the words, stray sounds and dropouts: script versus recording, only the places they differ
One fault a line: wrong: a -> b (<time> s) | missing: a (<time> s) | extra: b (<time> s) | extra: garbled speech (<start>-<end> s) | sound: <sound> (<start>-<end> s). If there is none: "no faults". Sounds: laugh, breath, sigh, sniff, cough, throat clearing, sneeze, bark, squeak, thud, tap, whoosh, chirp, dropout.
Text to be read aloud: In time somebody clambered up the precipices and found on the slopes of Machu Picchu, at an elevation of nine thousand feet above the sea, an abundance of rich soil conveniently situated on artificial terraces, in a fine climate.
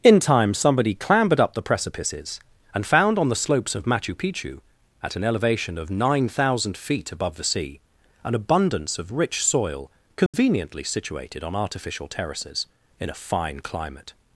sound: dropout (10.3-10.3 s)